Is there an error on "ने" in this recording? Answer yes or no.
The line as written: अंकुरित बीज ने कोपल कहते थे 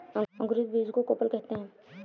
yes